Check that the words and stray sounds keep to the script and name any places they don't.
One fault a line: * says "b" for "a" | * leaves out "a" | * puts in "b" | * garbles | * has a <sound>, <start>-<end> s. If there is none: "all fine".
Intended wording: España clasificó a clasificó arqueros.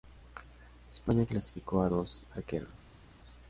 * says "dos" for "clasificó"